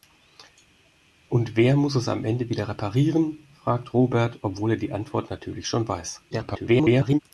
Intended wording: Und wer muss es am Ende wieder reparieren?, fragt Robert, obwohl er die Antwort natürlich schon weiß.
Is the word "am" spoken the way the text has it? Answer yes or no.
yes